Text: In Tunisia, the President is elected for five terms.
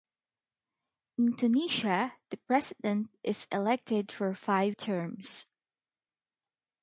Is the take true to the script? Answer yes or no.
yes